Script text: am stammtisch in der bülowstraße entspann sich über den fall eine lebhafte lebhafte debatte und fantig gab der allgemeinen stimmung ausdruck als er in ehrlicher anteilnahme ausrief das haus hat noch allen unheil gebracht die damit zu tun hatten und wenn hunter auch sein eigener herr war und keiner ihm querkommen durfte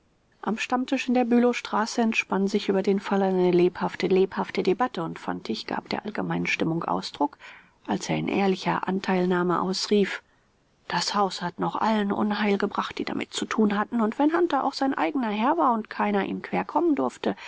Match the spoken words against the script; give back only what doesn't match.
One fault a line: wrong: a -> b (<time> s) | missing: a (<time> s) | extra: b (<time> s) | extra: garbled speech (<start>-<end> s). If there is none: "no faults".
no faults